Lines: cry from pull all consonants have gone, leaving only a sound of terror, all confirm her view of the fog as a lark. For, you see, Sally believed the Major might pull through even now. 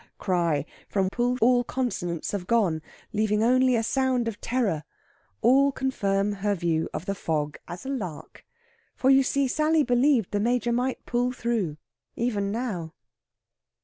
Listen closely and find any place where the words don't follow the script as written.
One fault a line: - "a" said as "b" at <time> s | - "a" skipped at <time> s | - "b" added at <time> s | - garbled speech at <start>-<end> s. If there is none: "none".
none